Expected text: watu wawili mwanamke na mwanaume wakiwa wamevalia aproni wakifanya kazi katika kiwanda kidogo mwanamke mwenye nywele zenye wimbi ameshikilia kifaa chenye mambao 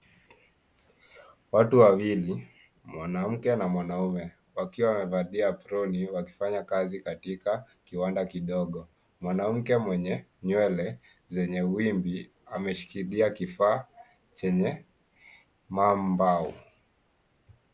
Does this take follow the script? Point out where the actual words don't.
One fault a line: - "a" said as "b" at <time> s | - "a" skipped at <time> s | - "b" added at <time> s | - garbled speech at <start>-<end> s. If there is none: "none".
none